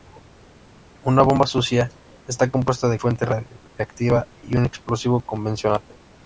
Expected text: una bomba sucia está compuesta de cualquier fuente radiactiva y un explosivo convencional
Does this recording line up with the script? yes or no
no